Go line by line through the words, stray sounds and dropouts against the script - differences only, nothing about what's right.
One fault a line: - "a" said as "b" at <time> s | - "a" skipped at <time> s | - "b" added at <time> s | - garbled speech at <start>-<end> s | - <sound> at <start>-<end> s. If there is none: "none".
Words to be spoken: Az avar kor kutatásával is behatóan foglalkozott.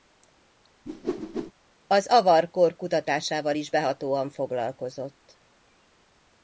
- whoosh at 0.9-1.5 s